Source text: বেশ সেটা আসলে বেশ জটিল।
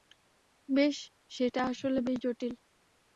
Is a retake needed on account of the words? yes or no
no